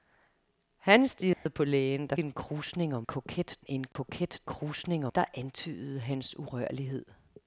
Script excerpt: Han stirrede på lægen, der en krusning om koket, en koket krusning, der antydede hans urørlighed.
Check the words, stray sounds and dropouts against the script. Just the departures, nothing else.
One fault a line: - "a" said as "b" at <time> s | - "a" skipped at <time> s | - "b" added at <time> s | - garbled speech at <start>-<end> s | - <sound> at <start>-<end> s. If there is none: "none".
- dropout at 1.3-1.5 s
- dropout at 3.9-4.0 s